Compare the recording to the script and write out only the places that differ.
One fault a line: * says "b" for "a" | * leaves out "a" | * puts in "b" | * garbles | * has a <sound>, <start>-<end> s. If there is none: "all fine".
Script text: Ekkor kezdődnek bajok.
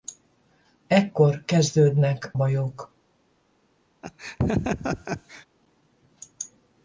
* has a laugh, 4.0-5.5 s